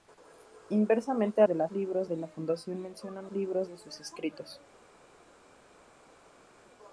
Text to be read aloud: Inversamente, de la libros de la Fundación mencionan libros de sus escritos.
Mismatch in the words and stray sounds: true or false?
false